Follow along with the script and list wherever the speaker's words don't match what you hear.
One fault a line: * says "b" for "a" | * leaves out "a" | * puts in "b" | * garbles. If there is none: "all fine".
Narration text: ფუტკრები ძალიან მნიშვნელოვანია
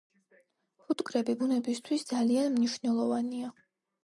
* puts in "ბუნებისთვის"